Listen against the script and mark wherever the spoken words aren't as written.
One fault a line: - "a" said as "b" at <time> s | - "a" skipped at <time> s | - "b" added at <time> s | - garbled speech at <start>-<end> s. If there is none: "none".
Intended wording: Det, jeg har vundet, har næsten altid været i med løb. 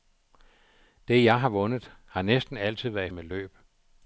none